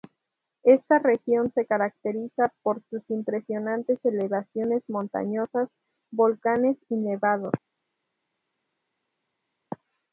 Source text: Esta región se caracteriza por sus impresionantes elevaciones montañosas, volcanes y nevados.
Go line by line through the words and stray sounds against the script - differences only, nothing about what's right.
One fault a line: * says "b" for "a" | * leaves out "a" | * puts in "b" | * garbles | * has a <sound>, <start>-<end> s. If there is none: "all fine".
all fine